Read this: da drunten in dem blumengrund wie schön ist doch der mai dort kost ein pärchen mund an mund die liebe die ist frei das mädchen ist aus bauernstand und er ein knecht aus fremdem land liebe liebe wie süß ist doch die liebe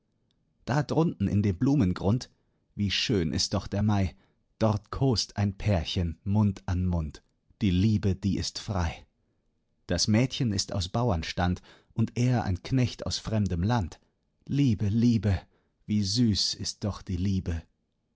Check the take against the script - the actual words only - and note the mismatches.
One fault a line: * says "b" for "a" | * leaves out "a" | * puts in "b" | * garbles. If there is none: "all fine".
all fine